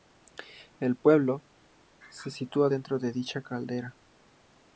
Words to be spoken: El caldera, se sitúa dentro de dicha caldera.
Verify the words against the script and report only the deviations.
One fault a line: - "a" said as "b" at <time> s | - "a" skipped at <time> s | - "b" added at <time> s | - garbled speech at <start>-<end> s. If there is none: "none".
- "caldera" said as "pueblo" at 0.9 s